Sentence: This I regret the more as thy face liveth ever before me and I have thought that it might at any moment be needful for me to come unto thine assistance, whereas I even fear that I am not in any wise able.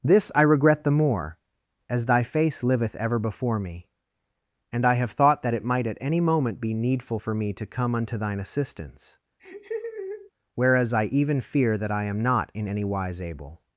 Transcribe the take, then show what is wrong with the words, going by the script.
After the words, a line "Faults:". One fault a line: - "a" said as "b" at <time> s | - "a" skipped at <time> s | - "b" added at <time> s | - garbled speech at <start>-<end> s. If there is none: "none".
This I regret the more as thy face liveth ever before me and I have thought that it might at any moment be needful for me to come unto thine assistance, whereas I even fear that I am not in any wise able.
Faults:
none